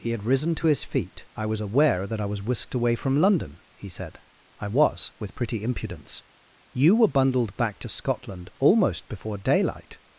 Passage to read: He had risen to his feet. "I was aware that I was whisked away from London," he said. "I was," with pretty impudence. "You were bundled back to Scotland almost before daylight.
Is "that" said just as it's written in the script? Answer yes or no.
yes